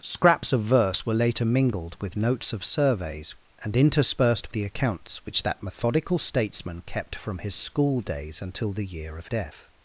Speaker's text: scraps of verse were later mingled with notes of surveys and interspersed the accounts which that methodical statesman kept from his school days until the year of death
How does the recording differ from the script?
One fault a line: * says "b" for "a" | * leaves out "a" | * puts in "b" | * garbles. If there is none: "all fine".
all fine